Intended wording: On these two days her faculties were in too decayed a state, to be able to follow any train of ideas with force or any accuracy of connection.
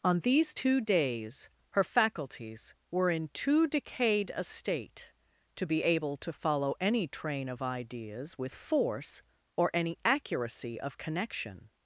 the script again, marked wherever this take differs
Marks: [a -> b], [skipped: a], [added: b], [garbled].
On these two days her faculties were in too decayed a state, to be able to follow any train of ideas with force or any accuracy of connection.